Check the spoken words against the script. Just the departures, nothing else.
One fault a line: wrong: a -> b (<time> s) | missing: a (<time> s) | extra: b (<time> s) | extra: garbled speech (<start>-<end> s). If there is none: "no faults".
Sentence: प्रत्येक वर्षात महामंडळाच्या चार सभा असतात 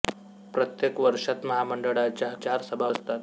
no faults